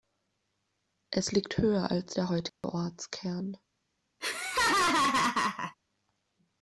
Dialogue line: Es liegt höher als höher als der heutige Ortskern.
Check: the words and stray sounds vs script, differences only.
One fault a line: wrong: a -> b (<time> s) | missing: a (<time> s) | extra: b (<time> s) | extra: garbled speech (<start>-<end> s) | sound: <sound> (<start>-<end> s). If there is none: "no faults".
missing: höher als (2.1 s)
sound: dropout (2.5-2.6 s)
sound: laugh (4.2-5.7 s)